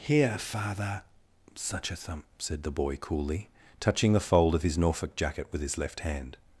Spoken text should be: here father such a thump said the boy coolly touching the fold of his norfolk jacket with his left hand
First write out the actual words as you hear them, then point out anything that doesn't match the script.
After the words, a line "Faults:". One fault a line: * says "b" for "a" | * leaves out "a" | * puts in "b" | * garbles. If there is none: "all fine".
here father such a thump said the boy coolly touching the fold of his norfolk jacket with his left hand
Faults:
all fine